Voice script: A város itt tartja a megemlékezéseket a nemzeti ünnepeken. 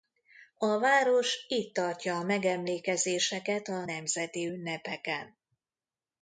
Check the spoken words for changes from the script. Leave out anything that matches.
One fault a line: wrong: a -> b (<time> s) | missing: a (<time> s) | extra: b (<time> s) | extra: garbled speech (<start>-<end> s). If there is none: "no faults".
no faults